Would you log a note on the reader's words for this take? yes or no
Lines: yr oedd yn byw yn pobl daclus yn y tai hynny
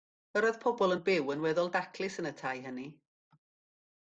yes